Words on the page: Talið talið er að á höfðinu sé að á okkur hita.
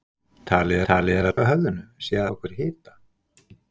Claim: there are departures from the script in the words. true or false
false